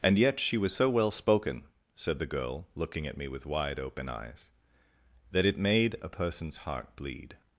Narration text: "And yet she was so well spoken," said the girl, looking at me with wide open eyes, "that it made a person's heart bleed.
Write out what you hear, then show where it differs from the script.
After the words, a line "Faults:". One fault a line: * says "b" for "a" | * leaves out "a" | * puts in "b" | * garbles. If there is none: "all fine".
"And yet she was so well spoken," said the girl, looking at me with wide open eyes, "that it made a person's heart bleed.
Faults:
all fine